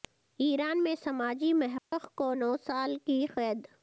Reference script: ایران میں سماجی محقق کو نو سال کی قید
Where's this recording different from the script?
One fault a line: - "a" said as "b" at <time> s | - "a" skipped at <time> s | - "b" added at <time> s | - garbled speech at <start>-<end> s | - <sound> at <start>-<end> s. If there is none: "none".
- dropout at 1.8-1.9 s